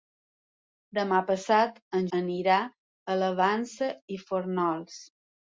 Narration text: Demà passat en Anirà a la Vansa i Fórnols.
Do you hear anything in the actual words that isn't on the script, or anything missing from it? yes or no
no